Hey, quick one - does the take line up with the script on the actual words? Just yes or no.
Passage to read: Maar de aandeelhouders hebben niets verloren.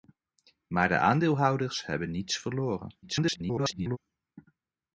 no